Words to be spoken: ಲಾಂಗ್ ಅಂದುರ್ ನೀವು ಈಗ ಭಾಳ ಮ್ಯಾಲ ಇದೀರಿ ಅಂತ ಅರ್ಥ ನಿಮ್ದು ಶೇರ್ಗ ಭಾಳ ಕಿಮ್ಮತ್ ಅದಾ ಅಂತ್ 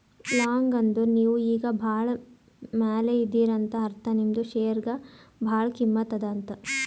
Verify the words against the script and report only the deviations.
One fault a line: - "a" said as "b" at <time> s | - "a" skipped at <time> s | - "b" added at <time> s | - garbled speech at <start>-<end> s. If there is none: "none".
none